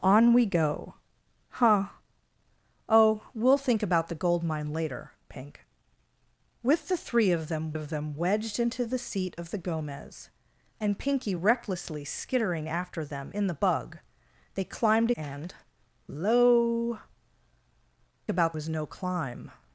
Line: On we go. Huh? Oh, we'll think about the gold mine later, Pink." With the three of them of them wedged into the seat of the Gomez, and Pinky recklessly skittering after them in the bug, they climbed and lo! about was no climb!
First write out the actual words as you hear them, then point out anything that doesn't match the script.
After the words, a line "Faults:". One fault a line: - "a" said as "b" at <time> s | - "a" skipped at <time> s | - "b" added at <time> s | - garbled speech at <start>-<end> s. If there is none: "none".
On we go. Huh? Oh, we'll think about the gold mine later, Pink." With the three of them of them wedged into the seat of the Gomez, and Pinky recklessly skittering after them in the bug, they climbed and lo! about was no climb!
Faults:
none